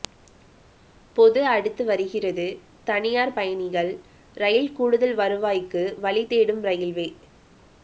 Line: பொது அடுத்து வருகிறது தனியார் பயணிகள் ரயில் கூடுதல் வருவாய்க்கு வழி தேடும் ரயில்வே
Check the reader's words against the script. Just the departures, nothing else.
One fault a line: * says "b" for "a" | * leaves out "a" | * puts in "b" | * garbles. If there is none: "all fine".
all fine